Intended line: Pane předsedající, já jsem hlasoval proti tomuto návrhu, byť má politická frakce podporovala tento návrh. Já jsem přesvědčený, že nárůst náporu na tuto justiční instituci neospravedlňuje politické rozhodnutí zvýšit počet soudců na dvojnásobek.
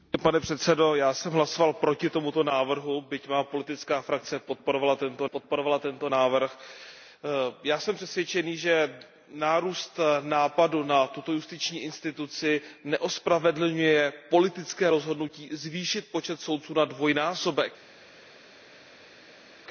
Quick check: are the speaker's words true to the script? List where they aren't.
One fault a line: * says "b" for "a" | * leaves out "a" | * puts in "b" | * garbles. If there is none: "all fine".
* puts in "podporovala tento"